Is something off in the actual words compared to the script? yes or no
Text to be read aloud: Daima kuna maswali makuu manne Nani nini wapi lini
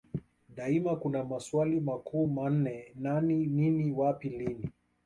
no